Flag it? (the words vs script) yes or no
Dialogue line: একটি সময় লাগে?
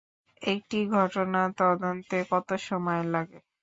yes